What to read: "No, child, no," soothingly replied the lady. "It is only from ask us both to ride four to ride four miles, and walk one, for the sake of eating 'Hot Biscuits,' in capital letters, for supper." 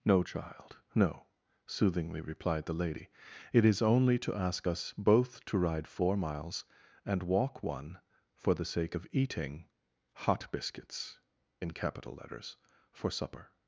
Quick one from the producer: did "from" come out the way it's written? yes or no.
no